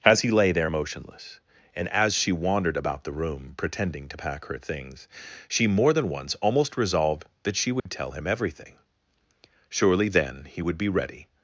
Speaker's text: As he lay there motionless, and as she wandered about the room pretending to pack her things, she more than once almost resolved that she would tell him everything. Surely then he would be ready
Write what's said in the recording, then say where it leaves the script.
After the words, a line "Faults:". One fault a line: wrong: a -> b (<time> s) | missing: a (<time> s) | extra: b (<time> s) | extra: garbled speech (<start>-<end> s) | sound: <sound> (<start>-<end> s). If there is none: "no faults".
As he lay there motionless, and as she wandered about the room pretending to pack her things, she more than once almost resolved that she would tell him everything. Surely then he would be ready
Faults:
sound: dropout (7.8-7.9 s)